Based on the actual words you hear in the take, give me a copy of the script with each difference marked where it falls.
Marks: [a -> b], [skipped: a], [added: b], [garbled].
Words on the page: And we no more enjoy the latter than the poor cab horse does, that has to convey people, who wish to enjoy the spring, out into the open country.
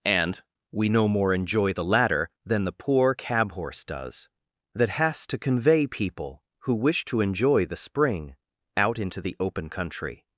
And we no more enjoy the latter than the poor cab horse does, that has to convey people, who wish to enjoy the spring, out into the open country.